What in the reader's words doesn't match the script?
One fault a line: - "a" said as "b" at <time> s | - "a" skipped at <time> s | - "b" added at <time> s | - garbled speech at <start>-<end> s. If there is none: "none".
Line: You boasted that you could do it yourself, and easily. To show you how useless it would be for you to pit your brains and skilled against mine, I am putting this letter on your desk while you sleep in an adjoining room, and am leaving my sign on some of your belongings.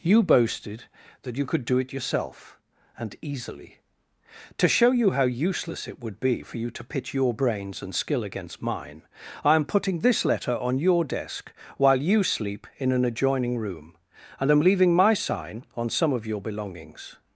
- "skilled" said as "skill" at 7.9 s